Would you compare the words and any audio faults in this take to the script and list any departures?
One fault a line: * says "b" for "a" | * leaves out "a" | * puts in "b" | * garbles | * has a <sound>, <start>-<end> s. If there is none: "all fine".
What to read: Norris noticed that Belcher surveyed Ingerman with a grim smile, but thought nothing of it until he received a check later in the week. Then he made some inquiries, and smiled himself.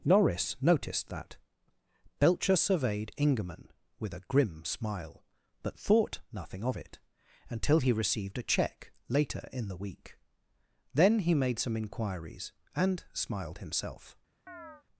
* has a chirp, 14.5-14.8 s